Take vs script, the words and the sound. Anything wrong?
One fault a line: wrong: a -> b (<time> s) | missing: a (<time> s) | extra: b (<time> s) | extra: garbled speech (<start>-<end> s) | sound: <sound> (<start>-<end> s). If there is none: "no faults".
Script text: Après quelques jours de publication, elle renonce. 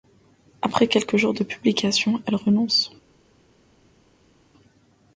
no faults